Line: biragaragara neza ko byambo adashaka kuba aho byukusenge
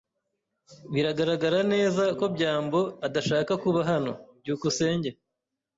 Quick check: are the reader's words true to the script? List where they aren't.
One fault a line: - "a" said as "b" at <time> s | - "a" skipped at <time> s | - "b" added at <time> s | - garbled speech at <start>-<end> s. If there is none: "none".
- "aho" said as "hano" at 3.9 s